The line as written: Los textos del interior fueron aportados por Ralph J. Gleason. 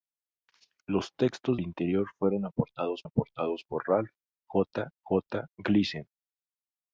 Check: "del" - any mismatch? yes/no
yes